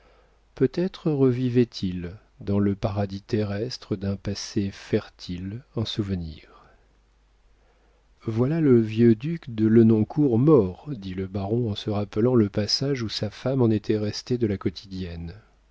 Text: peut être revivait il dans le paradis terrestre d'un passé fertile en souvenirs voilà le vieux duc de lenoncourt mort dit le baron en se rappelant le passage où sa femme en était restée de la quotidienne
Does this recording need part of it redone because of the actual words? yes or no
no